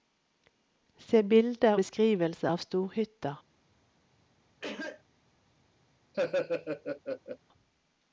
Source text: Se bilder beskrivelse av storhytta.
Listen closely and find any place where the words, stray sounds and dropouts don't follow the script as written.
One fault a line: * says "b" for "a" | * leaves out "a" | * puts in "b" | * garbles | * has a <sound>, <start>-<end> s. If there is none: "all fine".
* has a cough, 4.6-5.0 s
* has a laugh, 6.1-7.4 s